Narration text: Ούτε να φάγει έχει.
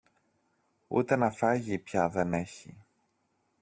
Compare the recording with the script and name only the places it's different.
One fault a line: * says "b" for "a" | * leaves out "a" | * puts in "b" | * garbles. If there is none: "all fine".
* puts in "πια δεν"